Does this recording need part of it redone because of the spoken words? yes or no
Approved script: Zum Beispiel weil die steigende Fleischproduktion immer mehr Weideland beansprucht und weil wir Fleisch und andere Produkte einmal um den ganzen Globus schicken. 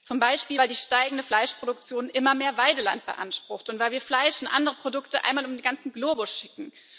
no